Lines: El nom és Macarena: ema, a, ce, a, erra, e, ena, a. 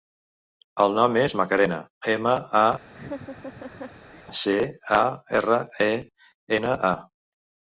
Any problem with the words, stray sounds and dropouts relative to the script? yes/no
yes